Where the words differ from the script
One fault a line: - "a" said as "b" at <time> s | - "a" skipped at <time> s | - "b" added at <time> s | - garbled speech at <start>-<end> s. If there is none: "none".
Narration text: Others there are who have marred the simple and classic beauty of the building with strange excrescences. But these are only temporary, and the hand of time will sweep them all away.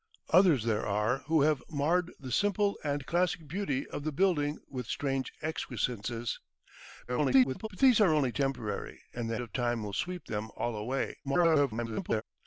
- garbled speech at 7.1-7.7 s
- "hand" skipped at 9.4 s
- garbled speech at 11.2-12.2 s